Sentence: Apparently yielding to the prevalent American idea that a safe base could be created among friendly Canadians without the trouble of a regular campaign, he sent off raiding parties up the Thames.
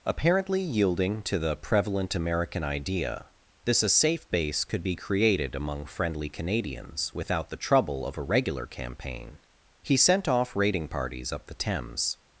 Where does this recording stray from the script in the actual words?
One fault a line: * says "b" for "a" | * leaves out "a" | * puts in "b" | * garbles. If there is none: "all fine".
* says "this" for "that"